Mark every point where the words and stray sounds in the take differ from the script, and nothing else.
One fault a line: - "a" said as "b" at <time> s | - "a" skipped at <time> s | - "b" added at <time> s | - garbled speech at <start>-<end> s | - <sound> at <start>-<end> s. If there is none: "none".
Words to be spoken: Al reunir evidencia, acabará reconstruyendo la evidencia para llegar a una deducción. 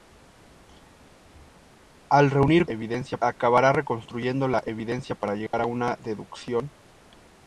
- dropout at 5.5-5.5 s